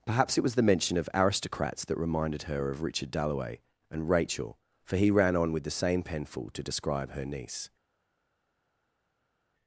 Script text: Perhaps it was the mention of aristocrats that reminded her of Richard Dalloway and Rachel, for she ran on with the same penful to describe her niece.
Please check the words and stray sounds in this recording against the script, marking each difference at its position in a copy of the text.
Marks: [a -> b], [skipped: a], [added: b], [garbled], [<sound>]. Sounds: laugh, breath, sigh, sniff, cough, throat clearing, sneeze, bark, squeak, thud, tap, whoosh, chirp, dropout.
Perhaps it was the mention of aristocrats that reminded her of Richard Dalloway and Rachel, for [she -> he] ran on with the same penful to describe her niece.